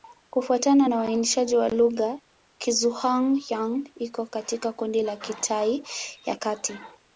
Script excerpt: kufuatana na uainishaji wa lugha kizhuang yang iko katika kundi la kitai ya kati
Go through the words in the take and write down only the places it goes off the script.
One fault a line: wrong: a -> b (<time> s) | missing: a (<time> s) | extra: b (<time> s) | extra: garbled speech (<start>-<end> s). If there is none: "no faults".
no faults